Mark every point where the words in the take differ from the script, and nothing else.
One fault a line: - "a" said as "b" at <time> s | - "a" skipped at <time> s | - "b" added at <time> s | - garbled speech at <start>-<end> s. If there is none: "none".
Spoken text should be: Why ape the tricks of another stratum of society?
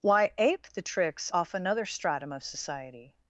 - "of" said as "off" at 1.3 s